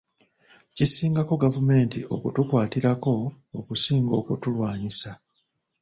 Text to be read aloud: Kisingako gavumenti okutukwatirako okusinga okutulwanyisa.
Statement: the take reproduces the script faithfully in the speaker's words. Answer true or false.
true